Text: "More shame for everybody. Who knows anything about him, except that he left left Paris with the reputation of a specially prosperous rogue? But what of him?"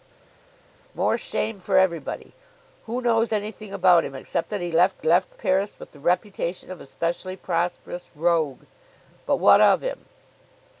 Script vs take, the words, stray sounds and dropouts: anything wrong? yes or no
no